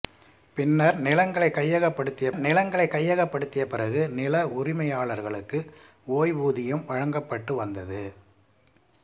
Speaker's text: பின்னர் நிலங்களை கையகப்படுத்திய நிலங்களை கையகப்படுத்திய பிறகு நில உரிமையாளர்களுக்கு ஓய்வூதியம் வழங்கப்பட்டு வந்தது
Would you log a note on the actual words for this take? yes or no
no